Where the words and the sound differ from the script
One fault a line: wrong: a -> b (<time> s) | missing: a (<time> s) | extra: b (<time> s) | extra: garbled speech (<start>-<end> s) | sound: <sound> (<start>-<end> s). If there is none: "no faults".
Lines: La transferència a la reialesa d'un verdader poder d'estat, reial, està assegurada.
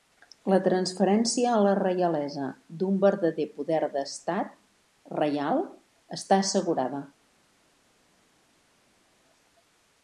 no faults